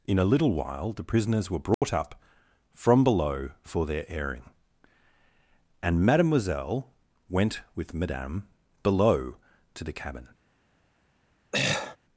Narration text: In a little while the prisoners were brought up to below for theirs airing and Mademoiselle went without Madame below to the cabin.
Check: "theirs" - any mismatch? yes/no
yes